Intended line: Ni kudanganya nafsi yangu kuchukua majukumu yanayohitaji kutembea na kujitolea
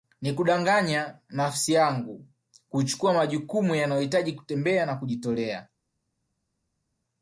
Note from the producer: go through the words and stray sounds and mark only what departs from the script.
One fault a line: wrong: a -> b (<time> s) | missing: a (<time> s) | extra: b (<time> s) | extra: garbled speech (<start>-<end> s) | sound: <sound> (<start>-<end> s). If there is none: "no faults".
no faults